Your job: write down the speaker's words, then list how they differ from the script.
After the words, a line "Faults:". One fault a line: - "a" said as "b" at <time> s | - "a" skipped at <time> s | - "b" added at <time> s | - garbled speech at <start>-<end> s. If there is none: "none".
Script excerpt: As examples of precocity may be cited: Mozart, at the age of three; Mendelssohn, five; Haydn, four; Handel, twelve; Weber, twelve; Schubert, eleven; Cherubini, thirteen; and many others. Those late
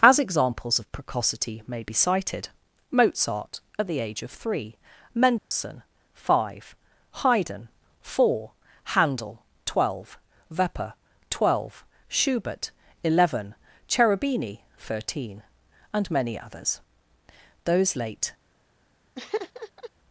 As examples of precocity may be cited: Mozart, at the age of three; Mendelssohn, five; Haydn, four; Handel, twelve; Weber, twelve; Schubert, eleven; Cherubini, thirteen; and many others. Those late
Faults:
none